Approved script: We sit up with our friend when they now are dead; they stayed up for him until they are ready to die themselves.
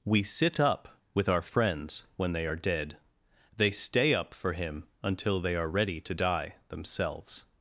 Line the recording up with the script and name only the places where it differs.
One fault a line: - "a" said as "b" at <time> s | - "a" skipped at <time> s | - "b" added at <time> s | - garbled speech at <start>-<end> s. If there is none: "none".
- "friend" said as "friends" at 1.4 s
- "now" skipped at 2.5 s
- "stayed" said as "stay" at 3.7 s